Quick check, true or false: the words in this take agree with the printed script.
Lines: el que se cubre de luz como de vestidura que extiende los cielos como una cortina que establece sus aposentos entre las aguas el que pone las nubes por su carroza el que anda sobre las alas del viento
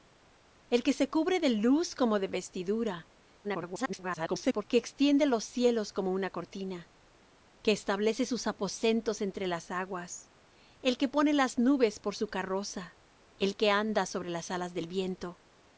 false